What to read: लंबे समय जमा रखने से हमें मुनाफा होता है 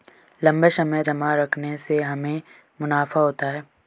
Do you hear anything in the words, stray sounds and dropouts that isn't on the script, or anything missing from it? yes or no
no